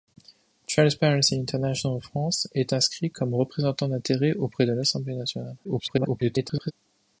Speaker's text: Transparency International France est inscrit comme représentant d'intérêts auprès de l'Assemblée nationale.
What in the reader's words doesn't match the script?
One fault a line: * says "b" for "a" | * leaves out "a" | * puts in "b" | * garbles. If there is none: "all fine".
* garbles